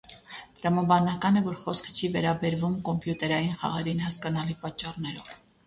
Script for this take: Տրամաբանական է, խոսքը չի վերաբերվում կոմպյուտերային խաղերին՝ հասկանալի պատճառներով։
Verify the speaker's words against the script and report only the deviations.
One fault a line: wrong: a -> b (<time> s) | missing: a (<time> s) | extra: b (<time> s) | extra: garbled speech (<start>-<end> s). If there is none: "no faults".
extra: որ (1.5 s)